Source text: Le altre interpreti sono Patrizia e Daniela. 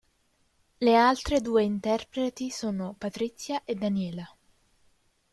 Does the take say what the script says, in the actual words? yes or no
no